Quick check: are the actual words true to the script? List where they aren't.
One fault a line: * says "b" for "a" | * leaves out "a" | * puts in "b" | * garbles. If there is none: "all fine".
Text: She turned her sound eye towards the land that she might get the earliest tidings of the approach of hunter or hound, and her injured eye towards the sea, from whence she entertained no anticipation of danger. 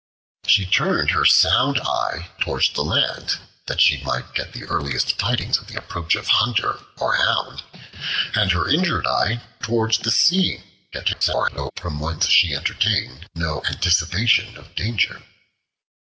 * garbles